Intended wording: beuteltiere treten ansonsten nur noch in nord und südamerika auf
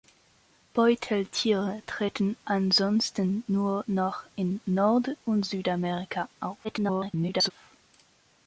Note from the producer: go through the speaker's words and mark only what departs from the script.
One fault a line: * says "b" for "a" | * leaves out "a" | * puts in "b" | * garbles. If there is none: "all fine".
* garbles